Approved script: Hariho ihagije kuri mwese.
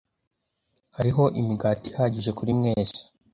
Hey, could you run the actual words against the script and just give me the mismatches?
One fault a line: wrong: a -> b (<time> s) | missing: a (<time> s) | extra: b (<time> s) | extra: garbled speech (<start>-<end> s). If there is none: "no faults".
extra: imigati (1.4 s)